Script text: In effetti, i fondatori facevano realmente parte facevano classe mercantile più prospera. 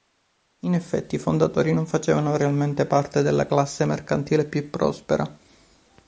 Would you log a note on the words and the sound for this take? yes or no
yes